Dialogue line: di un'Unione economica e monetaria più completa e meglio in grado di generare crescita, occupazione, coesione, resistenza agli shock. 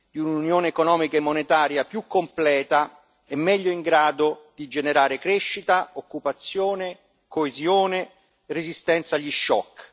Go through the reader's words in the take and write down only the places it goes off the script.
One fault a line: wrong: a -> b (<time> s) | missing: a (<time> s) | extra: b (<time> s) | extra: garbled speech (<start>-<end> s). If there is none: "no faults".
no faults